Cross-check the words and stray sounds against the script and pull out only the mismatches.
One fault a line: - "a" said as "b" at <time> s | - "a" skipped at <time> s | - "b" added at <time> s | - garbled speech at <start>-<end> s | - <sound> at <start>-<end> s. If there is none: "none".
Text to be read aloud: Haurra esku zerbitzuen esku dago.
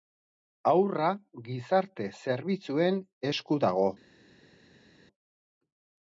- "esku" said as "gizarte" at 1.5 s